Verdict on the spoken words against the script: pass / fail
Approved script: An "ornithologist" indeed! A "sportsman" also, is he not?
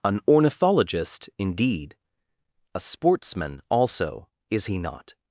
pass